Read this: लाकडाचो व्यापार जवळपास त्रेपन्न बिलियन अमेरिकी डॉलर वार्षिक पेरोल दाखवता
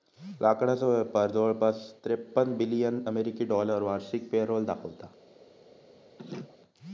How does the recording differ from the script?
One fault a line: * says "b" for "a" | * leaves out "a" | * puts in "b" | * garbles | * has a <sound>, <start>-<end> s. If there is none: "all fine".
* has a laugh, 6.2-6.6 s